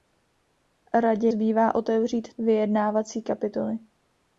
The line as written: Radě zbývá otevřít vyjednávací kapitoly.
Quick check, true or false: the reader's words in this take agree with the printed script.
true